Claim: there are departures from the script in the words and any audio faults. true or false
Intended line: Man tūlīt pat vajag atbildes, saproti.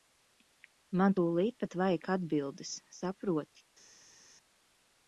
false